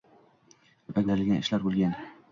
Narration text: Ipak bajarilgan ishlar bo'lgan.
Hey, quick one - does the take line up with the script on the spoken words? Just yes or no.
yes